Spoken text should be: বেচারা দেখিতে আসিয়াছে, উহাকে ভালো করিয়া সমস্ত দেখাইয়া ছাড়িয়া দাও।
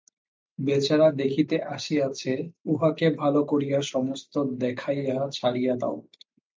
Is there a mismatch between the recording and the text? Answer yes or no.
no